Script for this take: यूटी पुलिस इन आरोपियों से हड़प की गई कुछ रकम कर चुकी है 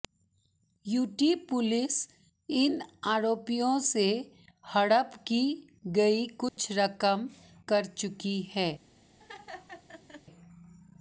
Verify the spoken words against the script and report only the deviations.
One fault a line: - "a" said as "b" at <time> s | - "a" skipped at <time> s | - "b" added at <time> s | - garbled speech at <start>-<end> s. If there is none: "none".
none